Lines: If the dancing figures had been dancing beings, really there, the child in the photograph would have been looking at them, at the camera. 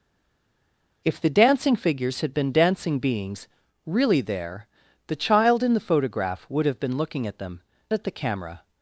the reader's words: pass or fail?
pass